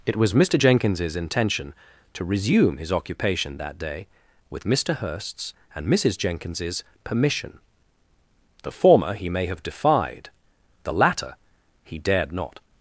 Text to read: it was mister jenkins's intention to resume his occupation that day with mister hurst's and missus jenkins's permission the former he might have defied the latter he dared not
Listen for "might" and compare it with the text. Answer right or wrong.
wrong